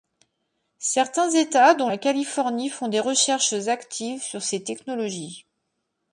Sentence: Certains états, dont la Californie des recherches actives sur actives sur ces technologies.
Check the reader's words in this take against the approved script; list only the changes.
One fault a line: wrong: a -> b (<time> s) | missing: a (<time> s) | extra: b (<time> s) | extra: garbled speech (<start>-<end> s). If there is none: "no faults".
extra: font (2.7 s)
missing: actives sur (4.4 s)